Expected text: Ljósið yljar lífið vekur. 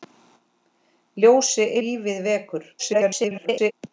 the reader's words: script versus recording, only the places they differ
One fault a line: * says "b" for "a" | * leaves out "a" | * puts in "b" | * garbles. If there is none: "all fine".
* leaves out "yljar"
* garbles